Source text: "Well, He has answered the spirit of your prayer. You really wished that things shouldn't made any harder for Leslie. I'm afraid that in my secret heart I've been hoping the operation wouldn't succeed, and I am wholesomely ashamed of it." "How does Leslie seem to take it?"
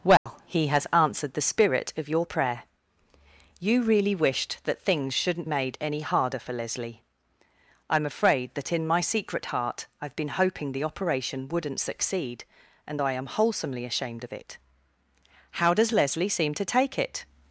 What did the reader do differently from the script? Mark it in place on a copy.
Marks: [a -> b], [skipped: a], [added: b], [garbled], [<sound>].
"Well, [dropout] He has answered the spirit of your prayer. You really wished that things shouldn't made any harder for Leslie. I'm afraid that in my secret heart I've been hoping the operation wouldn't succeed, and I am wholesomely ashamed of it." "How does Leslie seem to take it?"